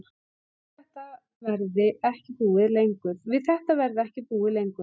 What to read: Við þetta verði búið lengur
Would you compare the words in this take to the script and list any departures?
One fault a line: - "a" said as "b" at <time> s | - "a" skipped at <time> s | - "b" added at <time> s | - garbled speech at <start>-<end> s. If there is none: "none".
- "ekki" added at 2.1 s